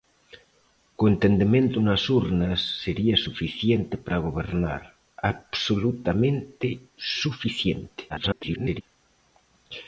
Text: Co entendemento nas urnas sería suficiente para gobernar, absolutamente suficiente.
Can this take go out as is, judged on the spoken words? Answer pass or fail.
fail